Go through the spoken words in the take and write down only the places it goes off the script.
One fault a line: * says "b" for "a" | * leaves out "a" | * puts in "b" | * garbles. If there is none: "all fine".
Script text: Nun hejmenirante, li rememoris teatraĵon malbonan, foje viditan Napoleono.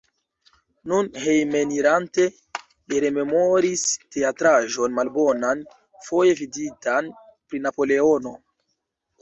* puts in "pri"